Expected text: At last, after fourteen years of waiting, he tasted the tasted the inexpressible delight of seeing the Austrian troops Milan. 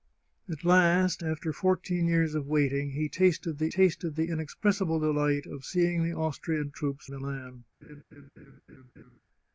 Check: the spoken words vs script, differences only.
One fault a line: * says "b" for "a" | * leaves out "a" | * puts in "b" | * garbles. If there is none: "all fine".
all fine